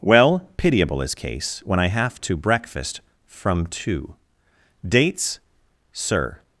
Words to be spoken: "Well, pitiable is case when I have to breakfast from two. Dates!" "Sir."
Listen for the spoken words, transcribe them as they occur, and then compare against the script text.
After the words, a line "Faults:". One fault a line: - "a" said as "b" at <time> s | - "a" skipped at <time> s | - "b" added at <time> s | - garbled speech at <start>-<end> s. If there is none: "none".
"Well, pitiable is case when I have to breakfast from two. Dates!" "Sir."
Faults:
none